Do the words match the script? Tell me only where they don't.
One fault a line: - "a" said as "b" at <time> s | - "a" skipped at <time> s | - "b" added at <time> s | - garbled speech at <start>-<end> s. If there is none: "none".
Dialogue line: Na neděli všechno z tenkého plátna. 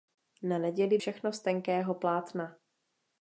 none